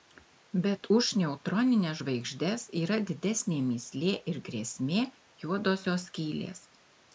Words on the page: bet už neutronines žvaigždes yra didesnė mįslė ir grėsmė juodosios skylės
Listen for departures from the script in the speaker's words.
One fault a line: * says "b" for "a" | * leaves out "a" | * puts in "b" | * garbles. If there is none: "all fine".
all fine